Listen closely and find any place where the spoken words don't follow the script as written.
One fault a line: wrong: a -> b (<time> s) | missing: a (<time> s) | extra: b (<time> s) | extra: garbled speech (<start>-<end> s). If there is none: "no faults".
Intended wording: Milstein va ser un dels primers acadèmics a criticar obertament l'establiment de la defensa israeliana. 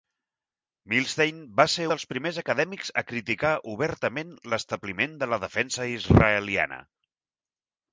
missing: un (1.8 s)